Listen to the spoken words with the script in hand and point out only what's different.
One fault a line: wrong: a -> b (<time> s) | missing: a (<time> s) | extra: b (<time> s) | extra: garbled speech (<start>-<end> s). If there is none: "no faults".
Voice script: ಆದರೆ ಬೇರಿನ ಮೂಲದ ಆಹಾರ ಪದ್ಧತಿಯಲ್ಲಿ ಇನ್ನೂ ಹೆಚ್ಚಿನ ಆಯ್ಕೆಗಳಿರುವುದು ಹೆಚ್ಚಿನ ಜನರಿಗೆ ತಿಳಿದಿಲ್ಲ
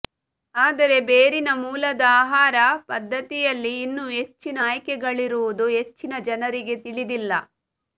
no faults